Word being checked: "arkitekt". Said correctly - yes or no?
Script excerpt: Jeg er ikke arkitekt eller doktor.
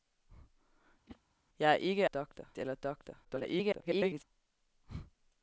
no